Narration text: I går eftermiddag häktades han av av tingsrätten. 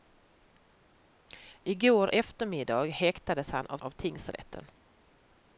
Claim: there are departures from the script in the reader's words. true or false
false